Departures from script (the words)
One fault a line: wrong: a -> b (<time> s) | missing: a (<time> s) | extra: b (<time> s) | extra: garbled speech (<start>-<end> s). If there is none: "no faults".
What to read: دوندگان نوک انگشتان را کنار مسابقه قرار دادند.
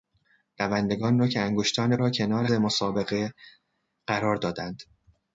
no faults